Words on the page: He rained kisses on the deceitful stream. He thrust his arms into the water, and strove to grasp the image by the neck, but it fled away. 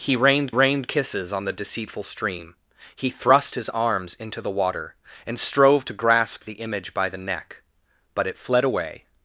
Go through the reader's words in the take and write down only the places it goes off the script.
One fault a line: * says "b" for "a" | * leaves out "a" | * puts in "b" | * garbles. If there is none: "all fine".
* puts in "rained"